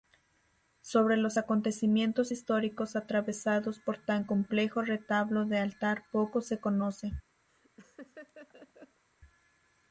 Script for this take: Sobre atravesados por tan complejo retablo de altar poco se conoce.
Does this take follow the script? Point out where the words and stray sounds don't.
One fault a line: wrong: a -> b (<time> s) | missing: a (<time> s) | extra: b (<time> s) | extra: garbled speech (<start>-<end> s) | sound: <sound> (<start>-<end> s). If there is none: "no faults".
extra: los acontecimientos históricos (1.1 s)
sound: laugh (7.5-9.0 s)